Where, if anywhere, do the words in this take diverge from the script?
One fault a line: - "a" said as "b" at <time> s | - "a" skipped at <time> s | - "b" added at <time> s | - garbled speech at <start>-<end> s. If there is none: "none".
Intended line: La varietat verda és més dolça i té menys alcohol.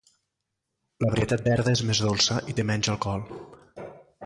none